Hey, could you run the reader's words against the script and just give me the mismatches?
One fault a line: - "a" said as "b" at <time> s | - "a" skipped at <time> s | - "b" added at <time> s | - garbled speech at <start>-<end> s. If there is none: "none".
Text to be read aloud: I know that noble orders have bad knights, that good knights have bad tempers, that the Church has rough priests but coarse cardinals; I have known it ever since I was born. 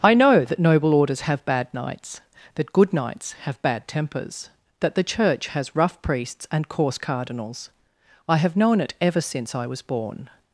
- "but" said as "and" at 6.5 s